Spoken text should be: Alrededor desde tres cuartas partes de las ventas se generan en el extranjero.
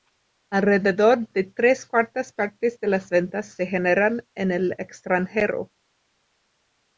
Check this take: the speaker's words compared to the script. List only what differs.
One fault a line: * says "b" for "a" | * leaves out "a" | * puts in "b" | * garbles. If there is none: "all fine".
* says "de" for "desde"